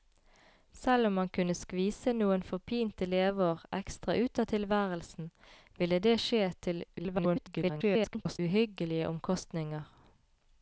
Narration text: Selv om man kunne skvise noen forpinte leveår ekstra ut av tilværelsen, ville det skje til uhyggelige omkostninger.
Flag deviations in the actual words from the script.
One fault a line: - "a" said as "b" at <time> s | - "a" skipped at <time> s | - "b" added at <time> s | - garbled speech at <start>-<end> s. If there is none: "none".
- garbled speech at 7.0-8.4 s